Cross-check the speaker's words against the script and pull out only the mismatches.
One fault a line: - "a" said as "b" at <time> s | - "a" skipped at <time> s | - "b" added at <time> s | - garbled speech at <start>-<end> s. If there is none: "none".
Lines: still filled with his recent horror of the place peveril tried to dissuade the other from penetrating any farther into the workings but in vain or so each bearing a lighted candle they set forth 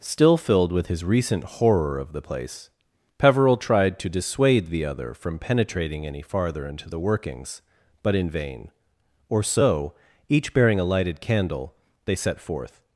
none